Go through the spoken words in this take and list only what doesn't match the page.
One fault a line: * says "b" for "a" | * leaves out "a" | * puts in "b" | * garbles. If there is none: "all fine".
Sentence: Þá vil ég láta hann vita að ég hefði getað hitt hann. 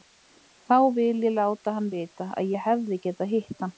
all fine